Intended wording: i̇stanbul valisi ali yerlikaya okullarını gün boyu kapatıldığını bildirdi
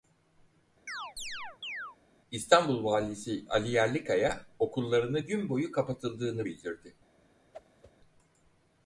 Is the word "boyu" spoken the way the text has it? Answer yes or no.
yes